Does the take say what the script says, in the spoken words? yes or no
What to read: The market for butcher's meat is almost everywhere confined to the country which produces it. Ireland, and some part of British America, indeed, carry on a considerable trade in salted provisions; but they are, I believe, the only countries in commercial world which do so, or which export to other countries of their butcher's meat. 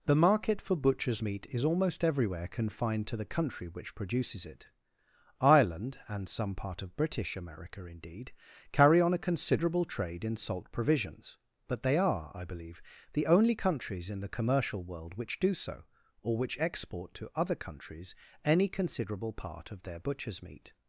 no